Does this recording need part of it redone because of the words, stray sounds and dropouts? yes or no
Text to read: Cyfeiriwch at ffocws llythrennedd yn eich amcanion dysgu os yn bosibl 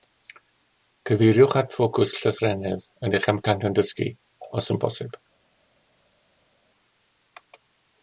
no